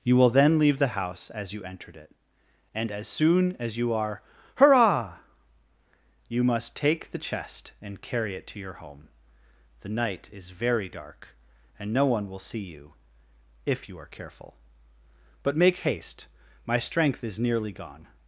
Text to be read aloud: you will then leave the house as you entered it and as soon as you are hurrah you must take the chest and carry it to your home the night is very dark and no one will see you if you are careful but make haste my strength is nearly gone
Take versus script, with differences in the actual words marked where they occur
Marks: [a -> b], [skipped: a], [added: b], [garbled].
you will then leave the house as you entered it and as soon as you are hurrah you must take the chest and carry it to your home the night is very dark and no one will see you if you are careful but make haste my strength is nearly gone